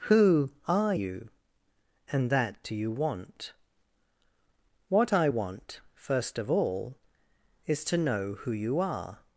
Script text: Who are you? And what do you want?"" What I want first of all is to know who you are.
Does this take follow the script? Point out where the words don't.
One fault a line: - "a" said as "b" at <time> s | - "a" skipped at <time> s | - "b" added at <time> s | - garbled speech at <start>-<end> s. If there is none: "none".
- "what" said as "that" at 2.3 s